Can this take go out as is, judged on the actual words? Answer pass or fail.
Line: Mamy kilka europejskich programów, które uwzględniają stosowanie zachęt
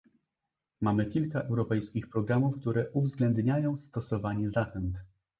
pass